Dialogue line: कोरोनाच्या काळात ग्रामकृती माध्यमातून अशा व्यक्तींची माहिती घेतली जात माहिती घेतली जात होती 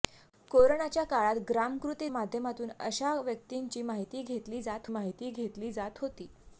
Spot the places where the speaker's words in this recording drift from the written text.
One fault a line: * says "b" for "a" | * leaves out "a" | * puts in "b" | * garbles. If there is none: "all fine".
all fine